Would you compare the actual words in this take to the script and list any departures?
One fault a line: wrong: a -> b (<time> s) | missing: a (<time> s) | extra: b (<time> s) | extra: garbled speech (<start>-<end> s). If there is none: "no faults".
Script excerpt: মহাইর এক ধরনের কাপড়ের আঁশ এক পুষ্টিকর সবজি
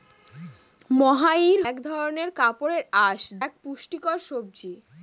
no faults